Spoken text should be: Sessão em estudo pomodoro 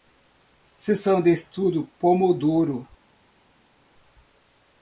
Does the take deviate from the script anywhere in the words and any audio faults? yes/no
yes